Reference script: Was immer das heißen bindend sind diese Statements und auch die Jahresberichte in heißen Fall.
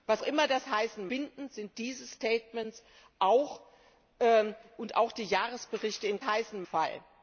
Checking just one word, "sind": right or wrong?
right